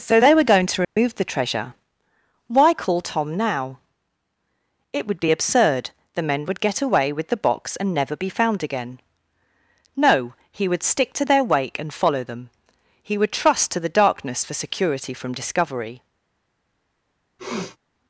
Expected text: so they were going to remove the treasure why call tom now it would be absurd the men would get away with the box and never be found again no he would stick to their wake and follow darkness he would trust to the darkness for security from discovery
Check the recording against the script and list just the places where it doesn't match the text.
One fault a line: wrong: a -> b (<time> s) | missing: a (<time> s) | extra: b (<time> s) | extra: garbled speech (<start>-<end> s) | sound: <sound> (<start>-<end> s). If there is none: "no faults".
sound: dropout (0.8-1.0 s)
wrong: darkness -> them (12.2 s)
sound: sniff (17.4-17.8 s)